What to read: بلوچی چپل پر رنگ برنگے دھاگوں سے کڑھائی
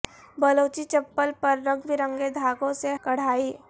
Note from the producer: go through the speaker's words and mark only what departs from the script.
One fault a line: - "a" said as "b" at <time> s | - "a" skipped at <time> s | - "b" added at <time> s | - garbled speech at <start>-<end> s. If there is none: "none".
none